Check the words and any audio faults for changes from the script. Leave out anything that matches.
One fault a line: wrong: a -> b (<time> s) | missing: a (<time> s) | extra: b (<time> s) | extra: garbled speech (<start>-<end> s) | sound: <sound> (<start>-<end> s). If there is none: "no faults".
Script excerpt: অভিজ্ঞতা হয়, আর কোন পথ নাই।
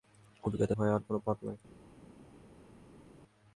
no faults